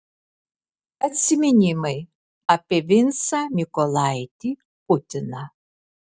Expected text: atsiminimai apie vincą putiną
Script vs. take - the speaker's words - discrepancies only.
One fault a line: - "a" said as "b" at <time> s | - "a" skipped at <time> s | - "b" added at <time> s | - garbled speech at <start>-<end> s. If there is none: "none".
- "mykolaitį" added at 3.6 s